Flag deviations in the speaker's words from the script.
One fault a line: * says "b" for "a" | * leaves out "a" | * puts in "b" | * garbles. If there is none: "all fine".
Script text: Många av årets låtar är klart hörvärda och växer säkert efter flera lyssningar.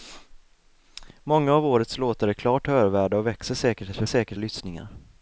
* says "säkert" for "flera"